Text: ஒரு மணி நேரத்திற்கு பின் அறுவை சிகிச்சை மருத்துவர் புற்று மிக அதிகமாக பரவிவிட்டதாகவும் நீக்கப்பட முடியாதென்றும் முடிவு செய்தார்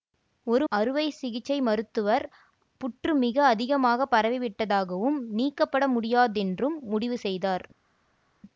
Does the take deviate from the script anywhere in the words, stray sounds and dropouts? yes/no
yes